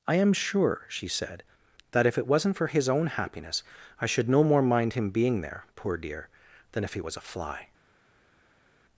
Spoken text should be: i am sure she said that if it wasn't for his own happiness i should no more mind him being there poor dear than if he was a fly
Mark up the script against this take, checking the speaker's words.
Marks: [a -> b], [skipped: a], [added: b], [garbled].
i am sure she said that if it wasn't for his own happiness i should no more mind him being there poor dear than if he was a fly